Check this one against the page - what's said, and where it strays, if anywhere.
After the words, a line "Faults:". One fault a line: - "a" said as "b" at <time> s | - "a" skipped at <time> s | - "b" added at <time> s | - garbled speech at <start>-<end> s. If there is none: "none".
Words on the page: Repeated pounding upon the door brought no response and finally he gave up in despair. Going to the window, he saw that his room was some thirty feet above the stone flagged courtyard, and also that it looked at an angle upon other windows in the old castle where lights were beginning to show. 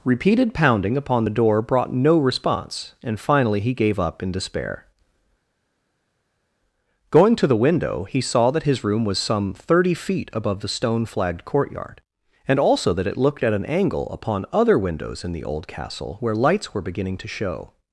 Repeated pounding upon the door brought no response and finally he gave up in despair. Going to the window, he saw that his room was some thirty feet above the stone flagged courtyard, and also that it looked at an angle upon other windows in the old castle where lights were beginning to show.
Faults:
none